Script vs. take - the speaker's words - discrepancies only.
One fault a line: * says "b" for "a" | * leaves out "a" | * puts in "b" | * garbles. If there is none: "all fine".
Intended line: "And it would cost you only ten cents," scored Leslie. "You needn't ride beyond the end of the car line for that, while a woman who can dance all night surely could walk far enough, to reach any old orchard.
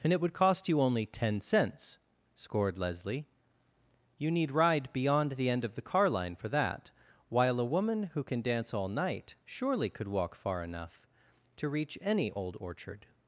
* says "need" for "needn't"